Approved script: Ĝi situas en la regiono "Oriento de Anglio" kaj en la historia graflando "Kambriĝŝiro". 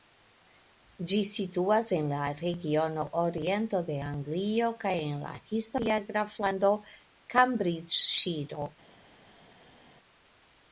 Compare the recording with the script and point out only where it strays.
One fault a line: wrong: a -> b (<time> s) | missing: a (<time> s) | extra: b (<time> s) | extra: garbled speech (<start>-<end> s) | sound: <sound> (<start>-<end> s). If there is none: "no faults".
no faults